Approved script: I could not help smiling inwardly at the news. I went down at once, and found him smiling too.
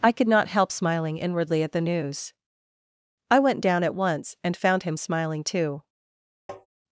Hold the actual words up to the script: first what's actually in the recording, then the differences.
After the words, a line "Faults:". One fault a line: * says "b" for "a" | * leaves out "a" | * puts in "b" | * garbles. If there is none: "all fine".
I could not help smiling inwardly at the news. I went down at once, and found him smiling too.
Faults:
all fine